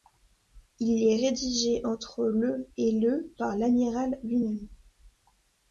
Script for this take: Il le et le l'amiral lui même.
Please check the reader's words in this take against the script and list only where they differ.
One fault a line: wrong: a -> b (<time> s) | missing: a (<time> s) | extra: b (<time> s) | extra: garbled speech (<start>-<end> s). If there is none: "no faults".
extra: est rédigé entre (1.1 s)
extra: par (3.4 s)